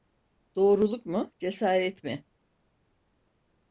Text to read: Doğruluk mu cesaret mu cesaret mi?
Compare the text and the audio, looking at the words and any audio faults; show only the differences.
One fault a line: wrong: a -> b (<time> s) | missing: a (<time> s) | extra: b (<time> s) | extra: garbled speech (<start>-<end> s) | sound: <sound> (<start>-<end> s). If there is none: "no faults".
missing: mu cesaret (2.0 s)